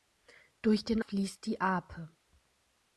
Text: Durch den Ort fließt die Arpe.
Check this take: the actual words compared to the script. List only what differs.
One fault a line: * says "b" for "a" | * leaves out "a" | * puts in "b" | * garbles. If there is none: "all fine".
* leaves out "Ort"